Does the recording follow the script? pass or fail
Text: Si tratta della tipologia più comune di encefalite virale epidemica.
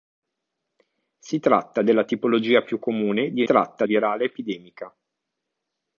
fail